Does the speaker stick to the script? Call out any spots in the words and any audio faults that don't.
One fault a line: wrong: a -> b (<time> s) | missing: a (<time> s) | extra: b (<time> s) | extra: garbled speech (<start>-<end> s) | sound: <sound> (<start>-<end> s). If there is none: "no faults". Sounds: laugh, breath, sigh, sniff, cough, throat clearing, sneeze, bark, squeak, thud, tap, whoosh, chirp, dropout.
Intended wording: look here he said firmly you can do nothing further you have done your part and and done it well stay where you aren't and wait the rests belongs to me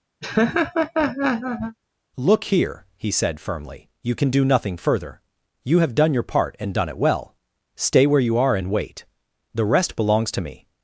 sound: laugh (0.2-1.8 s)
missing: and (6.7 s)
wrong: aren't -> are (8.4 s)
wrong: rests -> rest (9.6 s)